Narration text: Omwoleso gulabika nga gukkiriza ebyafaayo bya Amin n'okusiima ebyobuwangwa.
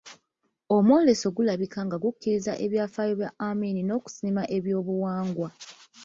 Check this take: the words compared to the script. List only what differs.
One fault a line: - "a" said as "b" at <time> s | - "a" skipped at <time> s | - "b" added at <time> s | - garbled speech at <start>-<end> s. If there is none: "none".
none